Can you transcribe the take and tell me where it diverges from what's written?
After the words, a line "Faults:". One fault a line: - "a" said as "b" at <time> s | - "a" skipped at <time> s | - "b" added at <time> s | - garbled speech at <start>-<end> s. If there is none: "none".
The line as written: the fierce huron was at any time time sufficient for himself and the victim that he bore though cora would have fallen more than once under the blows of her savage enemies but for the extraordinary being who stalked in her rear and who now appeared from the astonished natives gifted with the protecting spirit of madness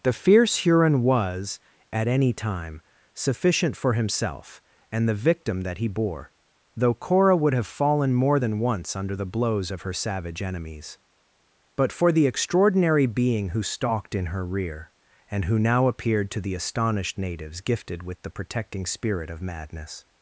the fierce huron was at any time sufficient for himself and the victim that he bore though cora would have fallen more than once under the blows of her savage enemies but for the extraordinary being who stalked in her rear and who now appeared to the astonished natives gifted with the protecting spirit of madness
Faults:
- "time" skipped at 2.8 s
- "from" said as "to" at 16.3 s